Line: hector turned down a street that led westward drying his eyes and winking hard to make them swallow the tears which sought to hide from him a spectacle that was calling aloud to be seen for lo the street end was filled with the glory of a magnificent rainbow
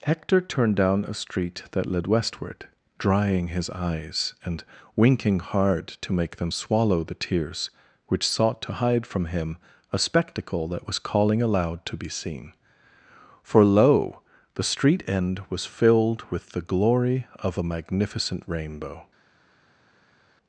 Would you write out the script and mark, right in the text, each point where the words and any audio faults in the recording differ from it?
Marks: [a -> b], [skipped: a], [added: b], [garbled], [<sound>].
hector turned down a street that led westward drying his eyes and winking hard to make them swallow the tears which sought to hide from him a spectacle that was calling aloud to be seen for lo the street end was filled with the glory of a magnificent rainbow